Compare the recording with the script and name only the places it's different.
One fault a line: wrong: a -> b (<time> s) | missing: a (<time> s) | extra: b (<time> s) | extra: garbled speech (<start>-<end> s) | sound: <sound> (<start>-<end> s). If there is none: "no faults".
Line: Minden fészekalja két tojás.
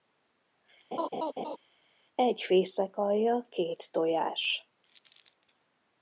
sound: laugh (0.9-1.6 s)
wrong: Minden -> Egy (2.2 s)